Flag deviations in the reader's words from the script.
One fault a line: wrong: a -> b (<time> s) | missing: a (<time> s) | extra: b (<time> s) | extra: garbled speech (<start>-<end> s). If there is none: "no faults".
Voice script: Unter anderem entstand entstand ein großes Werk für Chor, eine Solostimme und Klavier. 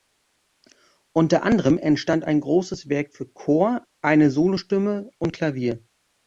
missing: entstand (2.2 s)